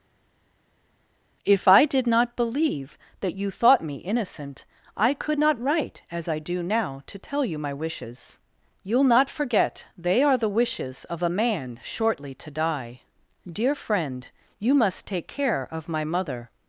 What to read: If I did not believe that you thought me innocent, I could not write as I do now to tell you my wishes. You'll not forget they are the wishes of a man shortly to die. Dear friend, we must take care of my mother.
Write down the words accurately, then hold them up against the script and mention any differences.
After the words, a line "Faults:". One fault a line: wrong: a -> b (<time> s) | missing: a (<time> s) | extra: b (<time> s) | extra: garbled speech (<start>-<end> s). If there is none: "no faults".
If I did not believe that you thought me innocent, I could not write as I do now to tell you my wishes. You'll not forget they are the wishes of a man shortly to die. Dear friend, you must take care of my mother.
Faults:
wrong: we -> you (14.6 s)